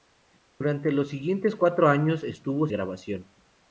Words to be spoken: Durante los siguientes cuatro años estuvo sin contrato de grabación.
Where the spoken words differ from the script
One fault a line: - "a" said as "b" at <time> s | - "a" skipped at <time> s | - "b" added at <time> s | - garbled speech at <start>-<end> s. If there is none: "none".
- "sin contrato de" skipped at 2.7 s